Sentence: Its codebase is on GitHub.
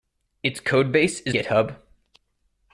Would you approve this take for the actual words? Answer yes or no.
no